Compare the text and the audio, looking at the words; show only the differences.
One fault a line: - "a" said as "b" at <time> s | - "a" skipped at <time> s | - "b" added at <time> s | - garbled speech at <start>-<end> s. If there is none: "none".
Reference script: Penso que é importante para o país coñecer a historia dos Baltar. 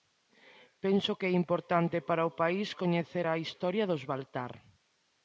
none